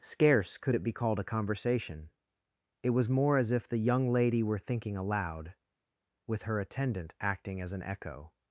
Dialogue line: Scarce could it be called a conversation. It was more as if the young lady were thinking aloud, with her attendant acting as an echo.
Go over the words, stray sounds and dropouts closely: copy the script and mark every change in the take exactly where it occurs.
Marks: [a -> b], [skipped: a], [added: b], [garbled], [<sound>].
Scarce could it be called a conversation. It was more as if the young lady were thinking aloud, with her attendant acting as an echo.